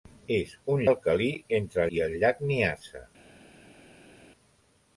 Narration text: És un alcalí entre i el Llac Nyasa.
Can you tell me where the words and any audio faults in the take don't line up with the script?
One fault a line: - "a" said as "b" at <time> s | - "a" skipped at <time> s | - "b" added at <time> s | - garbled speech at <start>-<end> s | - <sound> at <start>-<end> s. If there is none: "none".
none